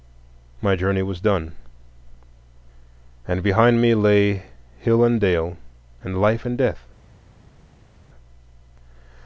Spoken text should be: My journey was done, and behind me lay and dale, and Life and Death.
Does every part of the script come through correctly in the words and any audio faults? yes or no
no